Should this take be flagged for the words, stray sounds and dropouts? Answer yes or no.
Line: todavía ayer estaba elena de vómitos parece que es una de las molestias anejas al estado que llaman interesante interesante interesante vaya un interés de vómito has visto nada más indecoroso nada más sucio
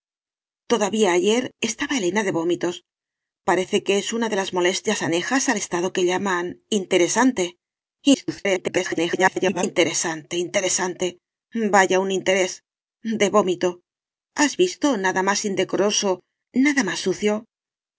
yes